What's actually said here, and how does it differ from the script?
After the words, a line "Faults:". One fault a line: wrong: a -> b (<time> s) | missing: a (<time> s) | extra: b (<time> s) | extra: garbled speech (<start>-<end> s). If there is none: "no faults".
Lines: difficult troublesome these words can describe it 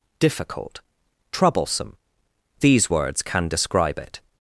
difficult troublesome these words can describe it
Faults:
no faults